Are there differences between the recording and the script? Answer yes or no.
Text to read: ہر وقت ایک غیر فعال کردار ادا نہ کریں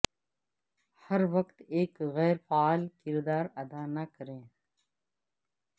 no